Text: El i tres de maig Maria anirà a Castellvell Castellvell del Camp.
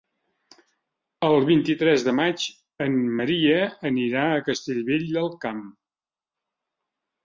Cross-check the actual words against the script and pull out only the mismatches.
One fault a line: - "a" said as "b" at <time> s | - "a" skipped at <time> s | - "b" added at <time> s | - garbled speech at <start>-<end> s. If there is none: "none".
- "vint" added at 1.5 s
- "en" added at 2.9 s
- "Castellvell" skipped at 5.1 s